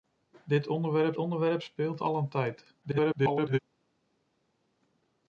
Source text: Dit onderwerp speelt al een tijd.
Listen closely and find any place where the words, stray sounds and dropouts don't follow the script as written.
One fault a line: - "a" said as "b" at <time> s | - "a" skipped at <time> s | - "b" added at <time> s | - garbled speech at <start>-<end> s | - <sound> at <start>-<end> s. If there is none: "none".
- "onderwerp" added at 1.2 s
- garbled speech at 2.8-3.6 s